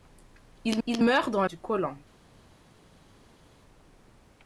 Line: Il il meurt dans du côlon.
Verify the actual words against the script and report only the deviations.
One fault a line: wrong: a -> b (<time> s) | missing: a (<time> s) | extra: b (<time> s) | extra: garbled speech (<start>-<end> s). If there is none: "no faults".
no faults